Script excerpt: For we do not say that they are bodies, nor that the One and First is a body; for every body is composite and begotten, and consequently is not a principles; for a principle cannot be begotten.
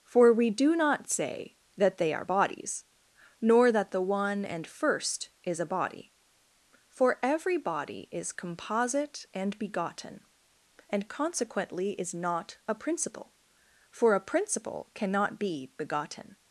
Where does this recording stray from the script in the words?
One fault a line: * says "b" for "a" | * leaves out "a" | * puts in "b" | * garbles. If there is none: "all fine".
* says "principle" for "principles"